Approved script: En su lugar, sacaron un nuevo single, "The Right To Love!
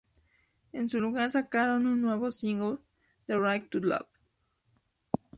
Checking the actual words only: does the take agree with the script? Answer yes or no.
yes